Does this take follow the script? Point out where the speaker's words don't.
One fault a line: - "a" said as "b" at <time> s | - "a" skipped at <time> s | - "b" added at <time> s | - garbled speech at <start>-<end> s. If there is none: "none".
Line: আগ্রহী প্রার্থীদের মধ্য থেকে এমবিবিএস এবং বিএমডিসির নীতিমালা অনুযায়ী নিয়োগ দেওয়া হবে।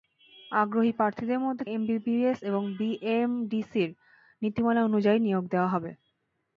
- "থেকে" skipped at 1.6 s